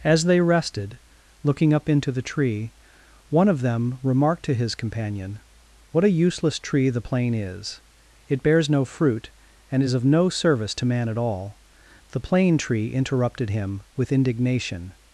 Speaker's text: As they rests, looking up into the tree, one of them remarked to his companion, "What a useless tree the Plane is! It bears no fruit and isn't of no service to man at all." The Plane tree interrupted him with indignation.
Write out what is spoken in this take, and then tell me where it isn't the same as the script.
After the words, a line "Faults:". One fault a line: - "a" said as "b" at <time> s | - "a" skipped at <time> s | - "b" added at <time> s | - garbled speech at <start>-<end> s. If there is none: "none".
As they rested, looking up into the tree, one of them remarked to his companion, "What a useless tree the Plane is! It bears no fruit and is of no service to man at all." The Plane tree interrupted him with indignation.
Faults:
- "rests" said as "rested" at 0.4 s
- "isn't" said as "is" at 9.8 s